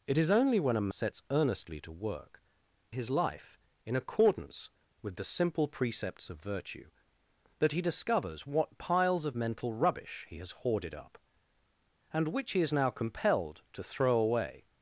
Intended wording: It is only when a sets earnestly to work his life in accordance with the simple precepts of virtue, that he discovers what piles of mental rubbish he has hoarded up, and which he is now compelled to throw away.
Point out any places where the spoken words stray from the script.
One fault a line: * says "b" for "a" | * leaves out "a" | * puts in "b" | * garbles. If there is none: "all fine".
all fine